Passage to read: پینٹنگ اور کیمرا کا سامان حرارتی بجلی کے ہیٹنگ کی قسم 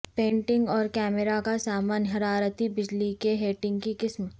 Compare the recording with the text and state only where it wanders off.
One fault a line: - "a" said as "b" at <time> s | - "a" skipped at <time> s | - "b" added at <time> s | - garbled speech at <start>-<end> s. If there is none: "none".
none